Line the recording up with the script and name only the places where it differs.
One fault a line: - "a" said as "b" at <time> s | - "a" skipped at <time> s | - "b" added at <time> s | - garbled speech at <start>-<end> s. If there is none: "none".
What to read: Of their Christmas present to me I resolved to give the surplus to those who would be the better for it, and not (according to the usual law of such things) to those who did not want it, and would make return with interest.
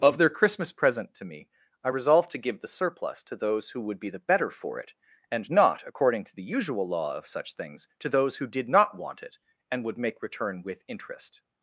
none